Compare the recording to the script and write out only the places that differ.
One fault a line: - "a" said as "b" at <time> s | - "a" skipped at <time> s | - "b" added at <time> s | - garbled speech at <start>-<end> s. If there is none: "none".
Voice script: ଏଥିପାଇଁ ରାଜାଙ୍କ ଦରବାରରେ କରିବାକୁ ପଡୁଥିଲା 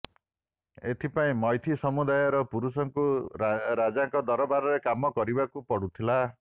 - "ମୈଥି ସମୁଦାୟର ପୁରୁଷଙ୍କୁ" added at 1.4 s
- "କାମ" added at 4.8 s